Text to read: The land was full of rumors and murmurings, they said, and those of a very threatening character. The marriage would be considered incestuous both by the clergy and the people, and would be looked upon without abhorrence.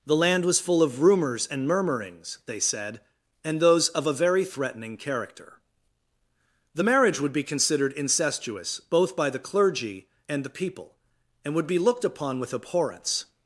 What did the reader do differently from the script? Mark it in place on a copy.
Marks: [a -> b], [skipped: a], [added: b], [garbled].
The land was full of rumors and murmurings, they said, and those of a very threatening character. The marriage would be considered incestuous both by the clergy and the people, and would be looked upon [without -> with] abhorrence.